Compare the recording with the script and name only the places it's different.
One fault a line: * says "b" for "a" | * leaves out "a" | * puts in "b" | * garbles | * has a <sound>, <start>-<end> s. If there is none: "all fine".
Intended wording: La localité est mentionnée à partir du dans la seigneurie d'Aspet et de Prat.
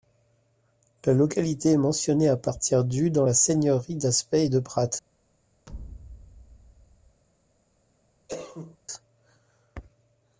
* has a thud, 5.7-7.2 s
* has a cough, 8.3-8.8 s